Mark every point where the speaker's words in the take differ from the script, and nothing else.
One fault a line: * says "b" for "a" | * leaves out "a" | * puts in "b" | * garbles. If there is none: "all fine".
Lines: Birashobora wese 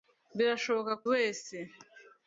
all fine